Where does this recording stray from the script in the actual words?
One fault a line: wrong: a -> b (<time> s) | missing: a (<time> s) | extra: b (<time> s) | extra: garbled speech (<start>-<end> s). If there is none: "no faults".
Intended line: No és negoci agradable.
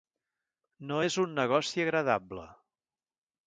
extra: un (1.2 s)